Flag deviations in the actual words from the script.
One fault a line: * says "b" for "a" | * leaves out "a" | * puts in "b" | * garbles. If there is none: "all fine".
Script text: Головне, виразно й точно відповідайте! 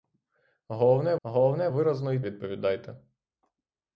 * puts in "головне"
* leaves out "точно"